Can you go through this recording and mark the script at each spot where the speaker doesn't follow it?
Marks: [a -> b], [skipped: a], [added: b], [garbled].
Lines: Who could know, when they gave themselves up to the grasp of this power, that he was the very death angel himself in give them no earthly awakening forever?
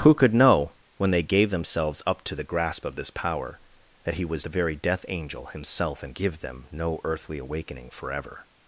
Who could know, when they gave themselves up to the grasp of this power, that he was the very death angel himself in give them no earthly awakening forever?